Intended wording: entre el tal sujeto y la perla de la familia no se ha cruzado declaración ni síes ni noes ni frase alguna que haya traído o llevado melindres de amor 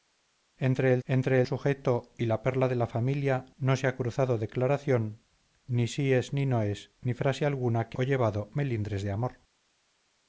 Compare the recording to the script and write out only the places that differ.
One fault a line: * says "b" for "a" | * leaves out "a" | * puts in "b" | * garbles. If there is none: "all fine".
* says "entre" for "tal"
* leaves out "haya traído"